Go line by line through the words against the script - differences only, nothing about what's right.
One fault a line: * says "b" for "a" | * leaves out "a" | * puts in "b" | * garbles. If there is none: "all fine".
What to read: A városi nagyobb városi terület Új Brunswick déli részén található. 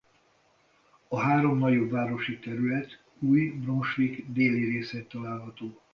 * says "három" for "városi"